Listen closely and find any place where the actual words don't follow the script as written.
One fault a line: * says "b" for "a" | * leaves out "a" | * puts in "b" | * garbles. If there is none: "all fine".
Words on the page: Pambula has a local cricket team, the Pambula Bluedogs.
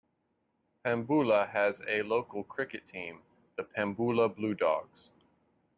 all fine